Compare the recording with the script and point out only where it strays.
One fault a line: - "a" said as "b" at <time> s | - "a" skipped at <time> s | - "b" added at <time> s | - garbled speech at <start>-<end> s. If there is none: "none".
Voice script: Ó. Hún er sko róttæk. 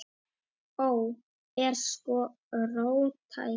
- "Hún" skipped at 0.9 s